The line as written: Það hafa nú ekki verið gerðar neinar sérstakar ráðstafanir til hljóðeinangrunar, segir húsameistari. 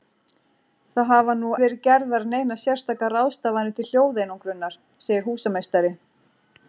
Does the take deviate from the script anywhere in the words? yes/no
yes